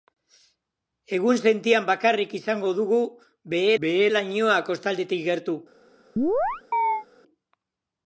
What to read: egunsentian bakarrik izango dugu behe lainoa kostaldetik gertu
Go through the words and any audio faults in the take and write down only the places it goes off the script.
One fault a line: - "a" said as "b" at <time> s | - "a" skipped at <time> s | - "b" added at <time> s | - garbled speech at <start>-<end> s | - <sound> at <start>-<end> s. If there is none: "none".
- "behe" added at 3.9 s
- chirp at 6.2-7.1 s